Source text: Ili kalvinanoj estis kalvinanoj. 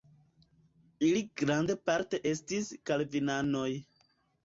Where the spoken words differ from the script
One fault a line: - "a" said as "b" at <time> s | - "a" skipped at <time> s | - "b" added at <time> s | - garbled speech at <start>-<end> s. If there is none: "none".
- "kalvinanoj" said as "grandparte" at 1.4 s